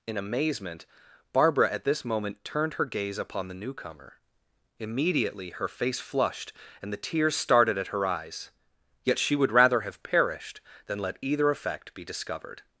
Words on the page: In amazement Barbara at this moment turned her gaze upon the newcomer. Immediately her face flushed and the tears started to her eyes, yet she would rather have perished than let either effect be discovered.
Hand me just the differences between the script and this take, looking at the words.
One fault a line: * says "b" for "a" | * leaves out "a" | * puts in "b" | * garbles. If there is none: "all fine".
* says "at" for "to"